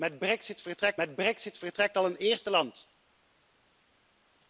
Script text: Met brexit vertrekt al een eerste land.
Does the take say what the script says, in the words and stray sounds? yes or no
no